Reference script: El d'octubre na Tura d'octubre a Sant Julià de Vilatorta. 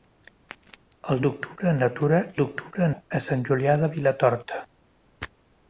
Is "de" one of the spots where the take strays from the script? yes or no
no